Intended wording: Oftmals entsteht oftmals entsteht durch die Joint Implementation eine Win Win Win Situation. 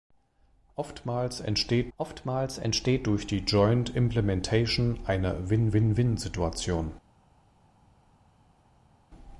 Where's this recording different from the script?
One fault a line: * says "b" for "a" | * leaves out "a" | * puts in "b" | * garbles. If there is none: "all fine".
all fine